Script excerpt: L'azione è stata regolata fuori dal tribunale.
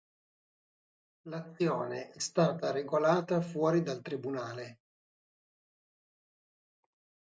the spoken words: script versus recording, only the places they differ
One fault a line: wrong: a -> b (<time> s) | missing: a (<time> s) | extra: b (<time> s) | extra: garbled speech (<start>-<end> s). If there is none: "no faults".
no faults